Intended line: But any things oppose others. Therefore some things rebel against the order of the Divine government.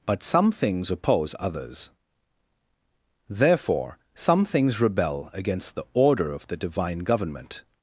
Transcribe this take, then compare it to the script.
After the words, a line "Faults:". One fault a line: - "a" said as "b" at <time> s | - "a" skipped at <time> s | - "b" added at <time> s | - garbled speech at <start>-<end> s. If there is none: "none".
But some things oppose others. Therefore some things rebel against the order of the Divine government.
Faults:
- "any" said as "some" at 0.2 s